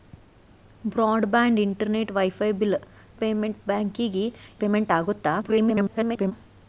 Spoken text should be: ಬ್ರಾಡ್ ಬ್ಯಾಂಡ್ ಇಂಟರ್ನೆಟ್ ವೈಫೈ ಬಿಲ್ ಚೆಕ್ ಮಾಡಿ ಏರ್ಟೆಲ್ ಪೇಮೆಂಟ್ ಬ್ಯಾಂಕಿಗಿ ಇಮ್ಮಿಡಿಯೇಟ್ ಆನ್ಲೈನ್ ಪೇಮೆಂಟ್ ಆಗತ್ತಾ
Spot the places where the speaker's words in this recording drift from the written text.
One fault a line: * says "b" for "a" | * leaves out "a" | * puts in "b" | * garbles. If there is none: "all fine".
* leaves out "ಚೆಕ್ ಮಾಡಿ ಏರ್ಟೆಲ್"
* leaves out "ಇಮ್ಮಿಡಿಯೇಟ್ ಆನ್ಲೈನ್"
* garbles